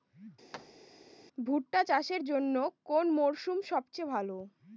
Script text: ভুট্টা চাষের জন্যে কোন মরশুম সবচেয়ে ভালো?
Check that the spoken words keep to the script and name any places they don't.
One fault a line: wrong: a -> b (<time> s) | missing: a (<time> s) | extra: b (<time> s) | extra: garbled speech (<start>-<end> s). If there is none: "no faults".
no faults